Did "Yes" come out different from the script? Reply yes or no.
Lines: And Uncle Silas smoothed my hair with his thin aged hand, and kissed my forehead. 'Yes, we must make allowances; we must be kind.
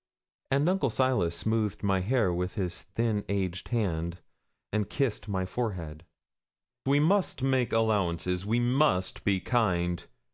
yes